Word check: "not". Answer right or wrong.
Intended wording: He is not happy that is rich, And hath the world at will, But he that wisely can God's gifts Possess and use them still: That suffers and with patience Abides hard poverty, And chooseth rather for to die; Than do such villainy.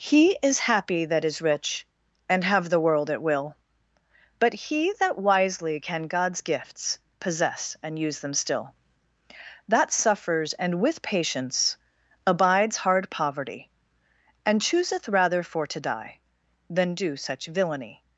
wrong